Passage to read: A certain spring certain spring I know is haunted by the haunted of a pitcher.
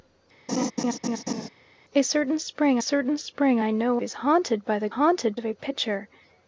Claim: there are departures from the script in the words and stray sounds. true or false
true